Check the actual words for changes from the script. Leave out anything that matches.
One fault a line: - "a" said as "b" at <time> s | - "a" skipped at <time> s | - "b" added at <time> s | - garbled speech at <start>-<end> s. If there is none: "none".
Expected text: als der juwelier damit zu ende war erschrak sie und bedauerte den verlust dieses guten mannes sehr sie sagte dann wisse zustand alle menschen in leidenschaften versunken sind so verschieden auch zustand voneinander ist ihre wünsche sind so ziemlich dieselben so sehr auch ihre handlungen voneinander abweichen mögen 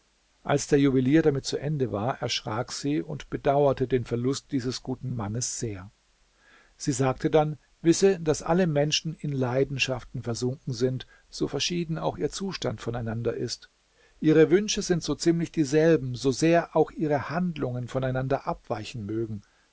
- "zustand" said as "daß" at 8.2 s
- "ihr" added at 12.2 s